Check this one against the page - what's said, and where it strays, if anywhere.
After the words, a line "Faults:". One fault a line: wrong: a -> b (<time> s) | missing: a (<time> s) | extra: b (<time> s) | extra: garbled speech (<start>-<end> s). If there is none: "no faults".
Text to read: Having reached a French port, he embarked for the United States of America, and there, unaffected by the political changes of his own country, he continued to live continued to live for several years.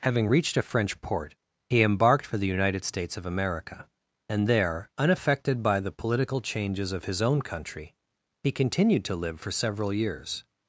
Having reached a French port, he embarked for the United States of America, and there, unaffected by the political changes of his own country, he continued to live for several years.
Faults:
missing: continued to live (9.4 s)